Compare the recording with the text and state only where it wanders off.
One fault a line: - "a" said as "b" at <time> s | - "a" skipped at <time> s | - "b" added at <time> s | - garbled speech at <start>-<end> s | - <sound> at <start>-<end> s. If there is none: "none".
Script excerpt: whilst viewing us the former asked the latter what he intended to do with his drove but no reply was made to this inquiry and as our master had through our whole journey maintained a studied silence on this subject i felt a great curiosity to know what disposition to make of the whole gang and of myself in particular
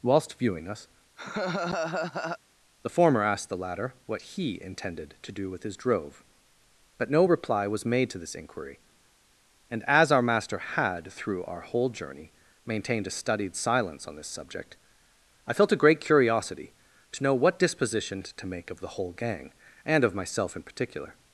- laugh at 1.2-2.4 s